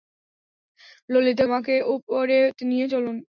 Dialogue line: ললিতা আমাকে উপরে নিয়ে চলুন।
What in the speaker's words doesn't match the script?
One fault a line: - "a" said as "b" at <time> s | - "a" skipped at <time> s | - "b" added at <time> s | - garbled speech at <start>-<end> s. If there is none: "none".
none